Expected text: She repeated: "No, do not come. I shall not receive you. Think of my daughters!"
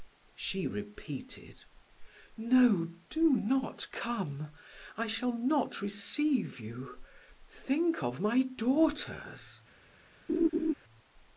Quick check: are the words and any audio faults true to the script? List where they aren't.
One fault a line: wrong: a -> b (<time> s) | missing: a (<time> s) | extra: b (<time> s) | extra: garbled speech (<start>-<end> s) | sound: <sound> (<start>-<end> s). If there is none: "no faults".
sound: laugh (10.3-10.7 s)